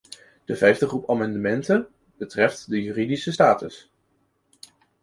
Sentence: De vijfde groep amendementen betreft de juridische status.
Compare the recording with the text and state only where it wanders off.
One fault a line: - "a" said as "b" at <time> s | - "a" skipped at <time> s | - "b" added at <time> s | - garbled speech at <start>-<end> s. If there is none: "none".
none